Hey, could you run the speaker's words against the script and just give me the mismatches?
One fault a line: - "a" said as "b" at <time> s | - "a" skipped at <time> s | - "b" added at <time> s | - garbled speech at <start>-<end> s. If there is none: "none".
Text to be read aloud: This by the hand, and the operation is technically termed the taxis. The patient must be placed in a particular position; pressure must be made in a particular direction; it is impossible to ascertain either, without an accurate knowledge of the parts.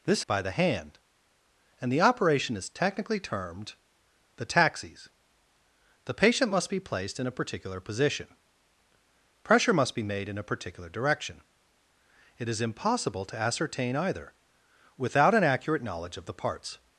none